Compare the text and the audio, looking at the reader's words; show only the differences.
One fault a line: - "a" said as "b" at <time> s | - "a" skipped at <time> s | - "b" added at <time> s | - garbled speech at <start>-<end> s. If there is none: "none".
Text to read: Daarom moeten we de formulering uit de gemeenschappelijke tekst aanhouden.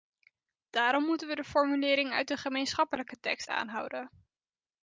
none